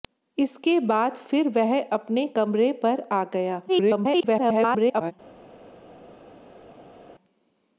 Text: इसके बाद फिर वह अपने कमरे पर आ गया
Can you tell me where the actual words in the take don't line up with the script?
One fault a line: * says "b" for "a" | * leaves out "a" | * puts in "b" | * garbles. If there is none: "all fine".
* garbles